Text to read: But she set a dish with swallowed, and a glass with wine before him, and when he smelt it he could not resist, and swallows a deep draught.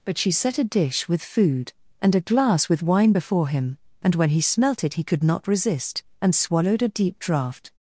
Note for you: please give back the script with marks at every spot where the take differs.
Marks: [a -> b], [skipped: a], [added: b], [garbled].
But she set a dish with [swallowed, -> food] and a glass with wine before him, and when he smelt it he could not resist, and [swallows -> swallowed] a deep draught.